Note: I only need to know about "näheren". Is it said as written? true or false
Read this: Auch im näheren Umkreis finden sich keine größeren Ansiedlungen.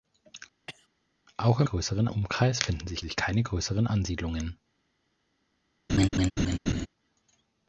false